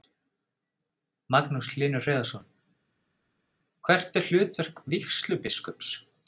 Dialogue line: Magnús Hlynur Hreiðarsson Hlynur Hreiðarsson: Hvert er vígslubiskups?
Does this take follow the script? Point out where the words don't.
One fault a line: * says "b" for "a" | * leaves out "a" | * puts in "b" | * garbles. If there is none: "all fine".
* leaves out "Hlynur Hreiðarsson"
* puts in "hlutverk"